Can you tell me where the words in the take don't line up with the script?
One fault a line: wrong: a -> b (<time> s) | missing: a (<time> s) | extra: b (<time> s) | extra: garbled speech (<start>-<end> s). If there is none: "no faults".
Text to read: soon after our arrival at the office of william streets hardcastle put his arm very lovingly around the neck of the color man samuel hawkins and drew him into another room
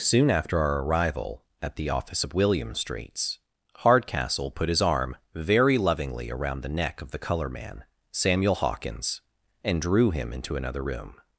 no faults